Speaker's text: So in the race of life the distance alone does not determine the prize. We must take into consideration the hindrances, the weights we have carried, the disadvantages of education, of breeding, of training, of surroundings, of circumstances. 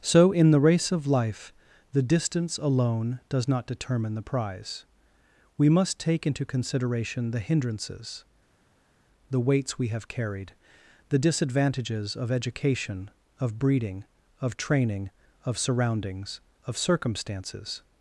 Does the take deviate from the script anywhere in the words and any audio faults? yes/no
no